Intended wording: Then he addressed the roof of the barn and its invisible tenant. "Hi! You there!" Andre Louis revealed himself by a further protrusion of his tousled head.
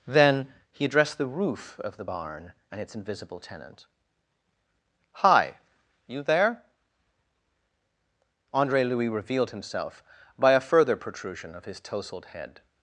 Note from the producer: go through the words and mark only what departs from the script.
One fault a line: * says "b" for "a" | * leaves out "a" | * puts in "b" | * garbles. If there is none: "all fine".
all fine